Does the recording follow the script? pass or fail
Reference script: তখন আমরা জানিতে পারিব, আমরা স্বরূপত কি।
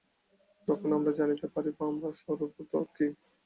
pass